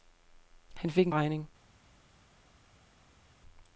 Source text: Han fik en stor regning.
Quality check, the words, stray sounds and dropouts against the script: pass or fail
fail